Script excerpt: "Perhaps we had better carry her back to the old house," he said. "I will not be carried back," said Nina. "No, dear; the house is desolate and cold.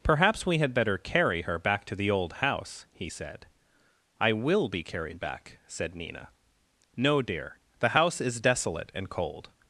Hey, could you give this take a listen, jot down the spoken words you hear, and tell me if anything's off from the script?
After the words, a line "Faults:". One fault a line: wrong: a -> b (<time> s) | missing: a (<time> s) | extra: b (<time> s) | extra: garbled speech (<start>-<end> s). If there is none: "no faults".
"Perhaps we had better carry her back to the old house," he said. "I will be carried back," said Nina. "No, dear; the house is desolate and cold.
Faults:
missing: not (4.7 s)